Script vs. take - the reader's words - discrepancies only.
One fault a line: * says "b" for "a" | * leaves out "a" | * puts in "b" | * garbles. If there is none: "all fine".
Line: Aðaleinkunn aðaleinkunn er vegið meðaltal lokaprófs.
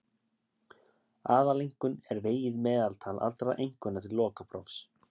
* leaves out "aðaleinkunn"
* puts in "allra einkunna til"